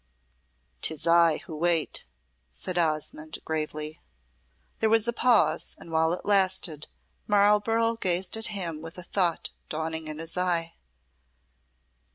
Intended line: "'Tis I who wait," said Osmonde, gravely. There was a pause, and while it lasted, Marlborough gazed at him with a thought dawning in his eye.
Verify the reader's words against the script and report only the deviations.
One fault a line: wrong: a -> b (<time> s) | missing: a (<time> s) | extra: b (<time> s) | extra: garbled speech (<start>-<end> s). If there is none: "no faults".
no faults